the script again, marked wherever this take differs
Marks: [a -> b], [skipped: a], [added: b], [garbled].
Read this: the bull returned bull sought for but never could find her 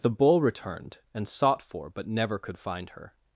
the bull returned [bull -> and] sought for but never could find her